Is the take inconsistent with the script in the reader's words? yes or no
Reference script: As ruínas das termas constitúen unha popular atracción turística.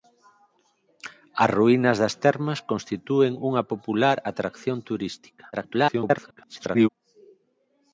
yes